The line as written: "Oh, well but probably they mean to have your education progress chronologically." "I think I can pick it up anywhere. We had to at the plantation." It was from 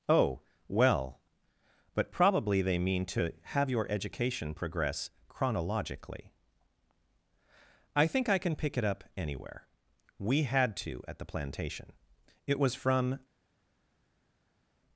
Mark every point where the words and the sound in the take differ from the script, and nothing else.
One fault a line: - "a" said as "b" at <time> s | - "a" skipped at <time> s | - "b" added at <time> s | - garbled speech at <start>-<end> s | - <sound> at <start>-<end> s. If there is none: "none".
none